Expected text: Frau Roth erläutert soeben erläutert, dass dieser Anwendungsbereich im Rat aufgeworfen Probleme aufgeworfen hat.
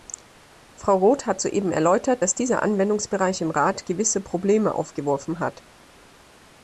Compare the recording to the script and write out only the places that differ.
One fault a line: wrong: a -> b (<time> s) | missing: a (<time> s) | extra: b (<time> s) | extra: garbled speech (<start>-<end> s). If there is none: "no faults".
wrong: erläutert -> hat (1.3 s)
wrong: aufgeworfen -> gewisse (3.8 s)